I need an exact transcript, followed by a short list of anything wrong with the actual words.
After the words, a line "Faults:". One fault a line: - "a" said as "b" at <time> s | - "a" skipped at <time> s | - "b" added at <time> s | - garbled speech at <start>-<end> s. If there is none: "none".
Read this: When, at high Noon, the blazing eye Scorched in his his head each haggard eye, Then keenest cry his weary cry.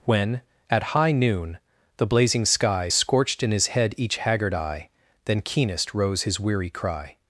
When, at high Noon, the blazing sky Scorched in his head each haggard eye, Then keenest rose his weary cry.
Faults:
- "eye" said as "sky" at 2.5 s
- "his" skipped at 3.7 s
- "cry" said as "rose" at 5.9 s